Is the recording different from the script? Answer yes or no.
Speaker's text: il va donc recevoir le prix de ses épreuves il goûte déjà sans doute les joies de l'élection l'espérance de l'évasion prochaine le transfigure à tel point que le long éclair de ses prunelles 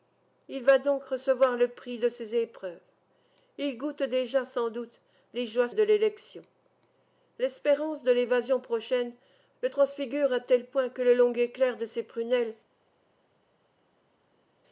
no